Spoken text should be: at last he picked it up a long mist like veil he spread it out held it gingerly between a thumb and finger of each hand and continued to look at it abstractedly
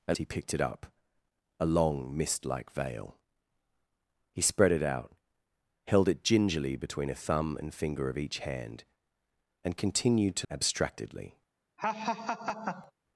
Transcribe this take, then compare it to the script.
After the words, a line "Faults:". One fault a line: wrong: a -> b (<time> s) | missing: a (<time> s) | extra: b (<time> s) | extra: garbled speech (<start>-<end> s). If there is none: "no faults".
at he picked it up a long mist like veil he spread it out held it gingerly between a thumb and finger of each hand and continued to abstractedly
Faults:
missing: last (0.2 s)
missing: look at it (10.5 s)